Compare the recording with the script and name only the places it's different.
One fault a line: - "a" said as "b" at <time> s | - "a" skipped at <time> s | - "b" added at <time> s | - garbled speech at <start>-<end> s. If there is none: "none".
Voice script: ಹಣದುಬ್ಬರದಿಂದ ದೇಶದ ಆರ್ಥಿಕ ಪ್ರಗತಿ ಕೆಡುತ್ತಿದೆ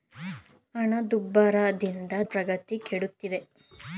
- "ದೇಶದ ಆರ್ಥಿಕ" skipped at 2.1 s